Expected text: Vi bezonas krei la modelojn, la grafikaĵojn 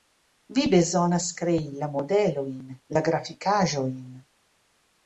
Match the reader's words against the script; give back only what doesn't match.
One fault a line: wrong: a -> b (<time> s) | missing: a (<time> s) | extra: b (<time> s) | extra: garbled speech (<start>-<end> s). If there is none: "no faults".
no faults